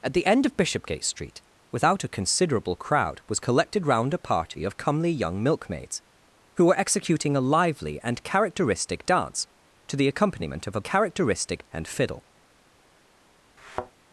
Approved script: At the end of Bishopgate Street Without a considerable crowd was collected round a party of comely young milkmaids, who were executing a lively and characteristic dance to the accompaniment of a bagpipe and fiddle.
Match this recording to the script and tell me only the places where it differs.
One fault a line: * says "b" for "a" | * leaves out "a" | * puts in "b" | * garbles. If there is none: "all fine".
* says "characteristic" for "bagpipe"